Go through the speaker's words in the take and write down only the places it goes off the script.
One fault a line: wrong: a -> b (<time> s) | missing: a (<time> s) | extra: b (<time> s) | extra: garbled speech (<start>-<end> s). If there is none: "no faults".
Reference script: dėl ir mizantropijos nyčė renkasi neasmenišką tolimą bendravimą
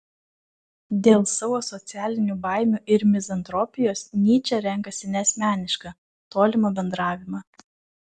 extra: savo socialinių baimių (1.3 s)